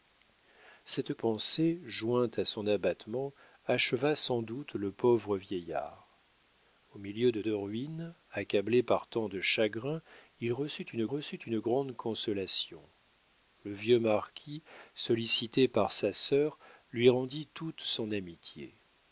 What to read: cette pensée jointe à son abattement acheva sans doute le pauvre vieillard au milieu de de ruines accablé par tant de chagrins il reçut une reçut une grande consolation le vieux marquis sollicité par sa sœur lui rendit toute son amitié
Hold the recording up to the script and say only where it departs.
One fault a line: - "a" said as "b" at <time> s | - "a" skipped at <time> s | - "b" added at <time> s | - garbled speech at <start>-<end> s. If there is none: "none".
none